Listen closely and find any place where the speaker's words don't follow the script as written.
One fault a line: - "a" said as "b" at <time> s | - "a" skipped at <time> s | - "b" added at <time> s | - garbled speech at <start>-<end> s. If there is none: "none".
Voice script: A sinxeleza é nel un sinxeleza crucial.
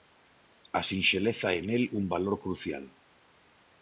- "sinxeleza" said as "valor" at 2.1 s